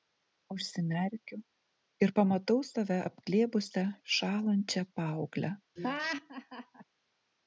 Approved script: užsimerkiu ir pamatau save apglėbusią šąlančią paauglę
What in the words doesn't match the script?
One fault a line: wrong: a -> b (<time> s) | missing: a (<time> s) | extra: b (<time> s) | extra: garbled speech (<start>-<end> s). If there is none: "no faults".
no faults